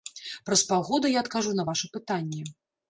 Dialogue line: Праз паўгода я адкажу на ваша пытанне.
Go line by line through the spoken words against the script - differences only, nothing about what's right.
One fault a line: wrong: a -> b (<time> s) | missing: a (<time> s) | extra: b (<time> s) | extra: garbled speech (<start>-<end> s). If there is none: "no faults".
no faults